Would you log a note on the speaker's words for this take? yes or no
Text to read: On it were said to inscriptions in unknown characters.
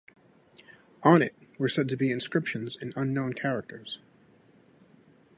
yes